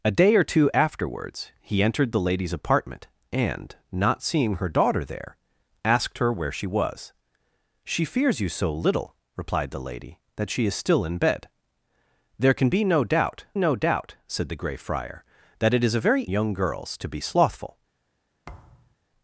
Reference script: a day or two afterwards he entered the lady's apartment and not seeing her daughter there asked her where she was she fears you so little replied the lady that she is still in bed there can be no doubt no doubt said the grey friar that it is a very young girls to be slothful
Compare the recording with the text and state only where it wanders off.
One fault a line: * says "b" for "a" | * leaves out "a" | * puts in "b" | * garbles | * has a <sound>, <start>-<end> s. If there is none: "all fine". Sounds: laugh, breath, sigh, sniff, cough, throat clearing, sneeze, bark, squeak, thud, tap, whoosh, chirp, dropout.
* has a thud, 18.4-19.0 s